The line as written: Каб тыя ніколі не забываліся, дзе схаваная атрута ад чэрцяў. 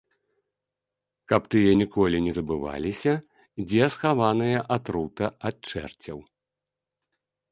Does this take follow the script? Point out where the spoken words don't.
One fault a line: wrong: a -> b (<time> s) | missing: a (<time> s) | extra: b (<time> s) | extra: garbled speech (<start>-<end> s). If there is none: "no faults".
no faults